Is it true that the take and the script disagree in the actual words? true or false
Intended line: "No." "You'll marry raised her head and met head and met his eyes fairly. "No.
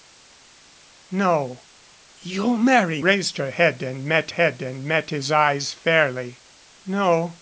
false